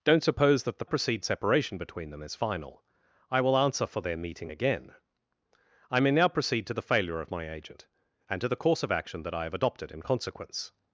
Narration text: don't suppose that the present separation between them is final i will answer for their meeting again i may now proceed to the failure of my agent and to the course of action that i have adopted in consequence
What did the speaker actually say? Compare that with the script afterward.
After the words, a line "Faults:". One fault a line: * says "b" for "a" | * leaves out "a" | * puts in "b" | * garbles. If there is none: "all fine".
don't suppose that the proceed separation between them is final i will answer for their meeting again i may now proceed to the failure of my agent and to the course of action that i have adopted in consequence
Faults:
* says "proceed" for "present"